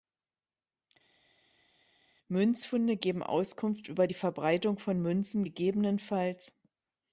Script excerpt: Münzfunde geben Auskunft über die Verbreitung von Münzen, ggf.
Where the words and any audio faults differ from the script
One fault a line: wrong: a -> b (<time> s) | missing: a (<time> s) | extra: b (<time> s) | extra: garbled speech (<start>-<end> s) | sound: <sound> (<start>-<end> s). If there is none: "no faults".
no faults